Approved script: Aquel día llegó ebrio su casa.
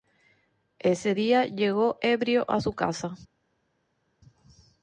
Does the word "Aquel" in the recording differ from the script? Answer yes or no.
yes